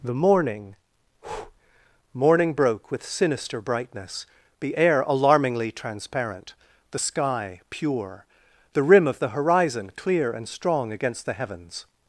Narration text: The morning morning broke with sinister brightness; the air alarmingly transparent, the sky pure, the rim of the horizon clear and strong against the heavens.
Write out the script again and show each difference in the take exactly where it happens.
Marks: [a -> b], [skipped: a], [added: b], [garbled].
The morning morning broke with sinister brightness; the air alarmingly transparent, the sky pure, the rim of the horizon clear and strong against the heavens.